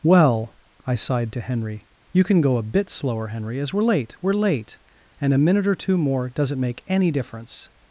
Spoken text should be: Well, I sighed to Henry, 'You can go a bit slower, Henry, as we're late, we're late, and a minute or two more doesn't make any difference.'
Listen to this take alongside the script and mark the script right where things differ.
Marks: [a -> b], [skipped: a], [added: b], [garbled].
Well, I sighed to Henry, 'You can go a bit slower, Henry, as we're late, we're late, and a minute or two more doesn't make any difference.'